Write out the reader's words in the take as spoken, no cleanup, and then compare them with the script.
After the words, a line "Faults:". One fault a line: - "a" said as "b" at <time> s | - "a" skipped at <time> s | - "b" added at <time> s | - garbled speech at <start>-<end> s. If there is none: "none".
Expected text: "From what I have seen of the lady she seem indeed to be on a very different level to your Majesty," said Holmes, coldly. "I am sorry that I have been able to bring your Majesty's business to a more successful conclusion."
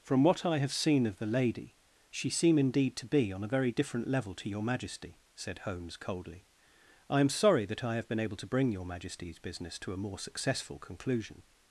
"From what I have seen of the lady she seem indeed to be on a very different level to your Majesty," said Holmes, coldly. "I am sorry that I have been able to bring your Majesty's business to a more successful conclusion."
Faults:
none